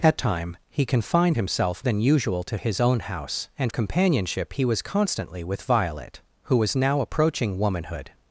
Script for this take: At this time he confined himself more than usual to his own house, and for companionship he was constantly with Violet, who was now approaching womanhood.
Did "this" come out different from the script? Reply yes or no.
yes